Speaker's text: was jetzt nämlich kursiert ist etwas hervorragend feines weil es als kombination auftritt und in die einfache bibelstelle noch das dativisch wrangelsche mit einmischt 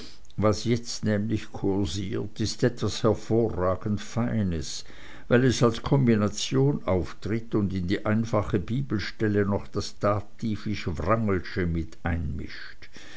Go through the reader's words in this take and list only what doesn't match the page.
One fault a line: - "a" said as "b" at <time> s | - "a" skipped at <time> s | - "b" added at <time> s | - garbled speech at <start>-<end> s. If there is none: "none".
none